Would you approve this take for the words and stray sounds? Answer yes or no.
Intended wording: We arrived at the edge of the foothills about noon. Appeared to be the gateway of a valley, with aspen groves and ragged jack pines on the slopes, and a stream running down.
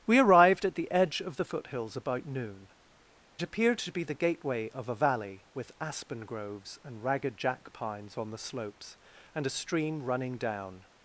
yes